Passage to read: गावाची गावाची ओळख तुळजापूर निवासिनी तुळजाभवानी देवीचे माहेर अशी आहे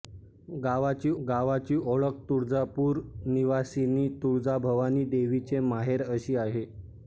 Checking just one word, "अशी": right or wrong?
right